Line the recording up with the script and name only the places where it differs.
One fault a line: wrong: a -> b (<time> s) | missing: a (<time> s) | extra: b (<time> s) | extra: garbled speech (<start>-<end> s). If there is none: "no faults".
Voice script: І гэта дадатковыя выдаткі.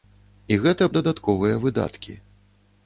no faults